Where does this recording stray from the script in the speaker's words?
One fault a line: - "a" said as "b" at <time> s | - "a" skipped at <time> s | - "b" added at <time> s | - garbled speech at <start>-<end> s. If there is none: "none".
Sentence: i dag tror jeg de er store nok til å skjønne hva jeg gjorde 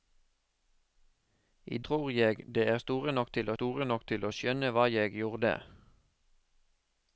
- "dag" skipped at 1.8 s
- "store nok til" added at 3.6 s